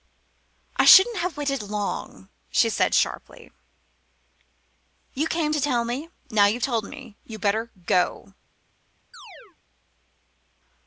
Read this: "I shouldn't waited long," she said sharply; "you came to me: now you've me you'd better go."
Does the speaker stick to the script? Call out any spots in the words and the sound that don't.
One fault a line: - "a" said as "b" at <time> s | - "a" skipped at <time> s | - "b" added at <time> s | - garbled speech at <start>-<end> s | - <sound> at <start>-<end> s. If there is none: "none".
- "have" added at 1.2 s
- "tell" added at 5.6 s
- "told" added at 6.6 s
- chirp at 9.1-9.6 s